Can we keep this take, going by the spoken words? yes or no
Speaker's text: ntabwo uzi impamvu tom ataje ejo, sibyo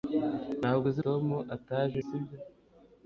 no